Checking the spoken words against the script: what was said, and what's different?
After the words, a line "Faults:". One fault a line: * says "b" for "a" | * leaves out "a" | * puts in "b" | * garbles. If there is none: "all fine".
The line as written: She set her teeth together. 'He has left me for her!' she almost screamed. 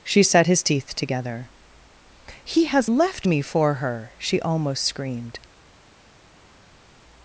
She set his teeth together. 'He has left me for her!' she almost screamed.
Faults:
* says "his" for "her"